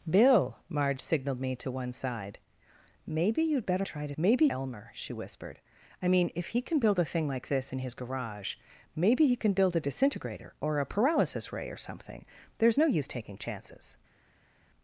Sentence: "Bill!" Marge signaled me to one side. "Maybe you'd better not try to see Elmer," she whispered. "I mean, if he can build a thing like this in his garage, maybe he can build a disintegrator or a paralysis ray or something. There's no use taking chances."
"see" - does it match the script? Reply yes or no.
no